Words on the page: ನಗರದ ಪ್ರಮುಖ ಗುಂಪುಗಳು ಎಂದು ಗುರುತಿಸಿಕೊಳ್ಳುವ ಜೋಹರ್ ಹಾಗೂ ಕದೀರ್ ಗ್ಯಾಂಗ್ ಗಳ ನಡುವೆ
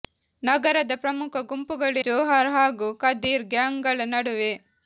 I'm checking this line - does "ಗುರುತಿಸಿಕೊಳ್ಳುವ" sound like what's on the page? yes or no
no